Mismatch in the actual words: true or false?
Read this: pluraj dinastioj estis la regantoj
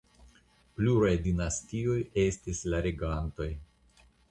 false